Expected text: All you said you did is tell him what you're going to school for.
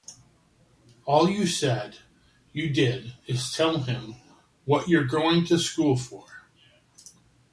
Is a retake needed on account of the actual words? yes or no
no